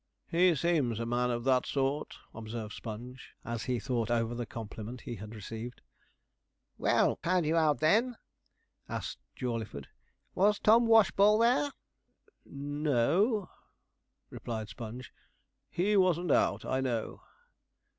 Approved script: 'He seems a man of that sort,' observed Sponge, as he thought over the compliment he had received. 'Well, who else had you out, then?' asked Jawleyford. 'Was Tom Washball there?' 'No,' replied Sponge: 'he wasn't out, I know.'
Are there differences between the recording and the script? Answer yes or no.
yes